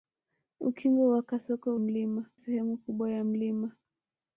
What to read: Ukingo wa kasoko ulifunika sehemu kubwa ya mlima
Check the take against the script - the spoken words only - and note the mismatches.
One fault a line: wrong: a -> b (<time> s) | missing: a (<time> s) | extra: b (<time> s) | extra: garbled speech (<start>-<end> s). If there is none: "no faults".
wrong: ulifunika -> mlima (1.8 s)